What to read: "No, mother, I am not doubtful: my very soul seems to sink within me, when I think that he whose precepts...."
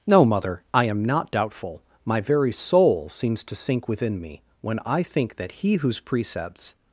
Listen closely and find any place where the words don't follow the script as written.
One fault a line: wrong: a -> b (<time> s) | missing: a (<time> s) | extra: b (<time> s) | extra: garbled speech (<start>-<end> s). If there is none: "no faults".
no faults